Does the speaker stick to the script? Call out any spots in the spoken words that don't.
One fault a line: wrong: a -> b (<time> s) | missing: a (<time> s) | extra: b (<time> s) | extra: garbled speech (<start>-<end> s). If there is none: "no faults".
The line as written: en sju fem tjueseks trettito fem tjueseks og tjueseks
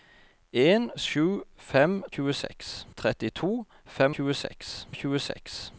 no faults